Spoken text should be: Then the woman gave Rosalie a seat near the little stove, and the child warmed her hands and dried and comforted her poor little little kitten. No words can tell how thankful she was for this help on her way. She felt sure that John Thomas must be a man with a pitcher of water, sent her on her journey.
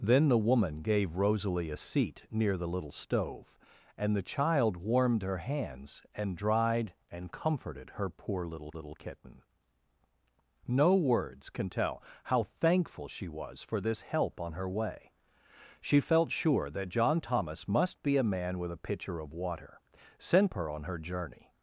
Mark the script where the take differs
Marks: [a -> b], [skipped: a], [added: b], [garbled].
Then the woman gave Rosalie a seat near the little stove, and the child warmed her hands and dried and comforted her poor little little kitten. No words can tell how thankful she was for this help on her way. She felt sure that John Thomas must be a man with a pitcher of water, sent her on her journey.